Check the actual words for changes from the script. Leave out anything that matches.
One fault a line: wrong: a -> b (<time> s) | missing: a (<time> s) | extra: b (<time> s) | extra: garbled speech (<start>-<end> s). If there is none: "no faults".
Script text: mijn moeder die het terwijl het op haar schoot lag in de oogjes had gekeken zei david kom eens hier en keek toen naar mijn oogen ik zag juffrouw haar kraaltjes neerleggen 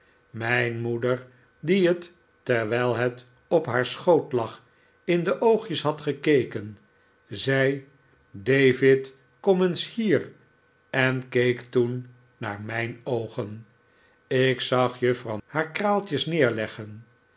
no faults